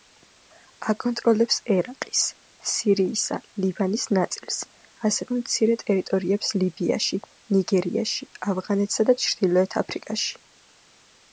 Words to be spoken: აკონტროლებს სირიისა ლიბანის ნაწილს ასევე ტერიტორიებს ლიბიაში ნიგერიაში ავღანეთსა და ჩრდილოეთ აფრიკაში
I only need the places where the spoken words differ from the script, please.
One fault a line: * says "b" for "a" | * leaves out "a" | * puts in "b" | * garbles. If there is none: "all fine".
* puts in "ერაყის"
* puts in "მცირე"